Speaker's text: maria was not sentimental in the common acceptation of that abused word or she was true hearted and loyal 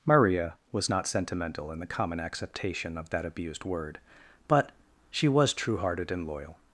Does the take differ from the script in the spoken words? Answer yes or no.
yes